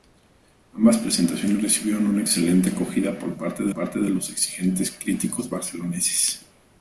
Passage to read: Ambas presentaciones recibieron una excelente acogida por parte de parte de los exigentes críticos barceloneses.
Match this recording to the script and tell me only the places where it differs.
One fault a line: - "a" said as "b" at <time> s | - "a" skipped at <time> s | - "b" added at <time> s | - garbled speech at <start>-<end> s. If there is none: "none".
none